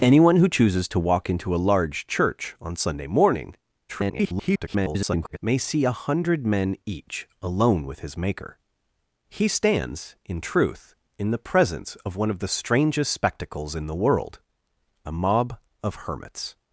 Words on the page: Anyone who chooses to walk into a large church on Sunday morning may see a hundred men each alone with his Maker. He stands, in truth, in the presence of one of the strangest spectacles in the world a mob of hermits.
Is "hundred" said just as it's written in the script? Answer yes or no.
yes